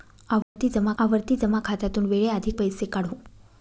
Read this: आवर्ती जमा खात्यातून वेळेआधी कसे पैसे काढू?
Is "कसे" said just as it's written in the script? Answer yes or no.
no